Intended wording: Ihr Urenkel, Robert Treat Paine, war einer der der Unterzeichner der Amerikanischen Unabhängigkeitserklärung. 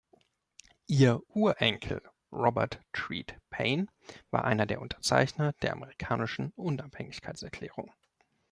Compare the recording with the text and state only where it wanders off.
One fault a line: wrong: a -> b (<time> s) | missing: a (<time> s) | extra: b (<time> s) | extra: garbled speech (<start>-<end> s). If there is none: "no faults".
missing: der (4.8 s)